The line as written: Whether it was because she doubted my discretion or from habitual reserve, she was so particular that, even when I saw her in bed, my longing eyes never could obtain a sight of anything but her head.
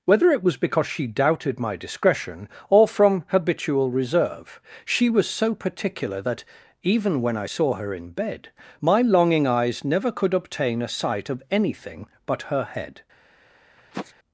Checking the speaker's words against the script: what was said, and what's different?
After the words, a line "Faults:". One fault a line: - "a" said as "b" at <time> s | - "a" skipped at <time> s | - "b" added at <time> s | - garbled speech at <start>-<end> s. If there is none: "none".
Whether it was because she doubted my discretion or from habitual reserve, she was so particular that, even when I saw her in bed, my longing eyes never could obtain a sight of anything but her head.
Faults:
none